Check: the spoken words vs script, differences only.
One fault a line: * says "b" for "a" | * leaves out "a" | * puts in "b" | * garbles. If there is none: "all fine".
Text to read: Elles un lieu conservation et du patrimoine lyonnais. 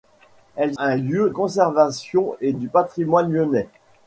all fine